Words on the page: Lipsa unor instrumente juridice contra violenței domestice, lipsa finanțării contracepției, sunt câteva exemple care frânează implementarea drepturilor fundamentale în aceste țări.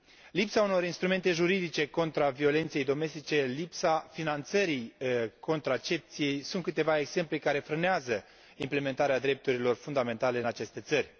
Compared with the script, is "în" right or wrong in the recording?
right